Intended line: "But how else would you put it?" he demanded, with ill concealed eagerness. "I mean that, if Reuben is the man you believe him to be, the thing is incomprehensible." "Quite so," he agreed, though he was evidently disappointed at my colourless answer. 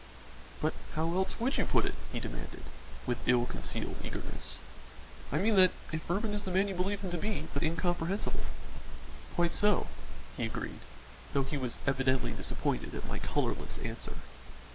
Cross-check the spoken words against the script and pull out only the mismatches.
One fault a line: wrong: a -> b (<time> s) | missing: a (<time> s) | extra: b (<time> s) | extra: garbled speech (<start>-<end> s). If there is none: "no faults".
missing: thing is (7.6 s)